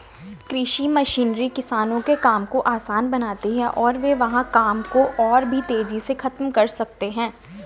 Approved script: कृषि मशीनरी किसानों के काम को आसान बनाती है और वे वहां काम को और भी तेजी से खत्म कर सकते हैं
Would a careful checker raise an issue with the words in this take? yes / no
no